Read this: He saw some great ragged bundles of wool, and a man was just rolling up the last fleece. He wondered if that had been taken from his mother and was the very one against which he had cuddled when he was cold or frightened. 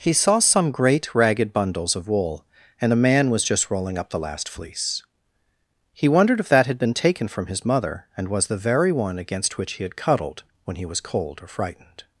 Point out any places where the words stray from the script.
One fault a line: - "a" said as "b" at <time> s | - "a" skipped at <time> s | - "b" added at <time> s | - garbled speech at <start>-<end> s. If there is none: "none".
none